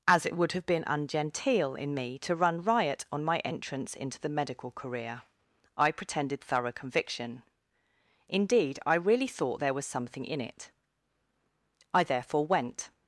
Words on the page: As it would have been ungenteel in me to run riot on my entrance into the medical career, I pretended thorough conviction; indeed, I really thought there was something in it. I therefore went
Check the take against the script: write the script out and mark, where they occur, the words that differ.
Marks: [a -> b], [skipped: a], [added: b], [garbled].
As it would have been ungenteel in me to run riot on my entrance into the medical career, I pretended thorough conviction; indeed, I really thought there was something in it. I therefore went